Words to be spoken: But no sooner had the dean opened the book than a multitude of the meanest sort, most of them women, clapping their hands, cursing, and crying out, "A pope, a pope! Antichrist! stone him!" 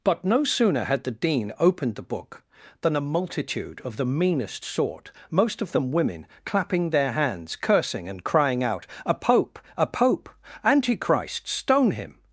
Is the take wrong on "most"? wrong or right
right